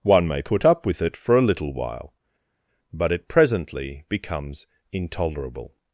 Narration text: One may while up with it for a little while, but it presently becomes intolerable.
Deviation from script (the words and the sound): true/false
true